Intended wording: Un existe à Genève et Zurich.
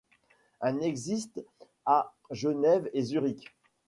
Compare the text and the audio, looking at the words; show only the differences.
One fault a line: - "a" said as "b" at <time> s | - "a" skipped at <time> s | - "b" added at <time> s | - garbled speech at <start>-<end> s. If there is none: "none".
none